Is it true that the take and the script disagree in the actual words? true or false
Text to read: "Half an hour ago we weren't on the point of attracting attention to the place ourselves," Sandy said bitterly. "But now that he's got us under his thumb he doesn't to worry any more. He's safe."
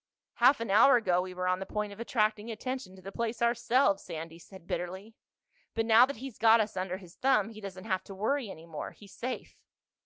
true